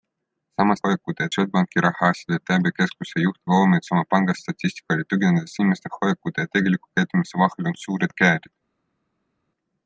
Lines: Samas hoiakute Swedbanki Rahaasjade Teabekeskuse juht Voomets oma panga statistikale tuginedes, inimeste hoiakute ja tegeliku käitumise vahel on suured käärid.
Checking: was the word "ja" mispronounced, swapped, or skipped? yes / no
no